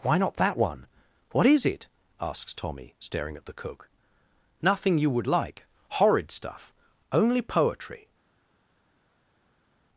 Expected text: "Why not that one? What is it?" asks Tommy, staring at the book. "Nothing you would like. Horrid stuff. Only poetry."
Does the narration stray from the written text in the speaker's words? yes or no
yes